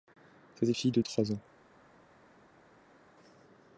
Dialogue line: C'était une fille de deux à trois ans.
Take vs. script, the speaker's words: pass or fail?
fail